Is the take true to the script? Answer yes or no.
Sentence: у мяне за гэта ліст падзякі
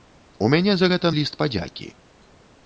yes